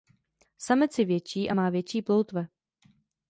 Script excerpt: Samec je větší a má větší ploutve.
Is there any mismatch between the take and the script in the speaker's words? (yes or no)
no